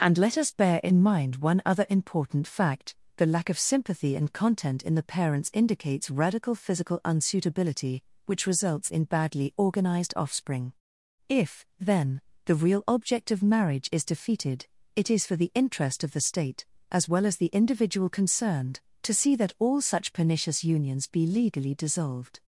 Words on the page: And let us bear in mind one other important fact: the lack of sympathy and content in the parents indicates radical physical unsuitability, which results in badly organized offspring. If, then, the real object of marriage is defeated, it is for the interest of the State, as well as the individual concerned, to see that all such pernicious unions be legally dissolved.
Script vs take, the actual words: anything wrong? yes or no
no